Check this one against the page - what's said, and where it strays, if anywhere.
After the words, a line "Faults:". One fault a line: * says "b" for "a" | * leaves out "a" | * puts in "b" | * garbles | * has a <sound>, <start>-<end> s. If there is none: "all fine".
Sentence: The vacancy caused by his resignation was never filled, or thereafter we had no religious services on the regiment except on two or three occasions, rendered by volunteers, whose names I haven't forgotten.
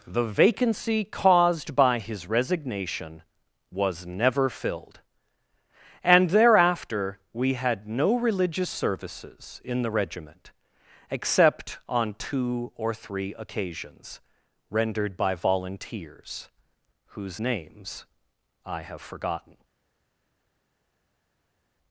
The vacancy caused by his resignation was never filled, and thereafter we had no religious services in the regiment except on two or three occasions, rendered by volunteers, whose names I have forgotten.
Faults:
* says "and" for "or"
* says "in" for "on"
* says "have" for "haven't"